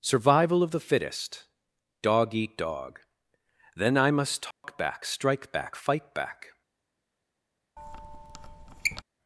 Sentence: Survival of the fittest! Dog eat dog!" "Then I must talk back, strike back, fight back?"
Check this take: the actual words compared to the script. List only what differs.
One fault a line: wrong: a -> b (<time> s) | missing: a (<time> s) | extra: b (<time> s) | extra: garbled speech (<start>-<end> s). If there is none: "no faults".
no faults